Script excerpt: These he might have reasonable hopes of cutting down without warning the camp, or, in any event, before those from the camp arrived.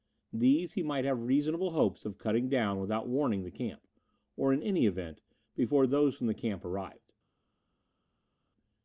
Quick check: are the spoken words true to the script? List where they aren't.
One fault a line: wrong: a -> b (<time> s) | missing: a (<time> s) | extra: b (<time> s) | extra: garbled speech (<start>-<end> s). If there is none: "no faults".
no faults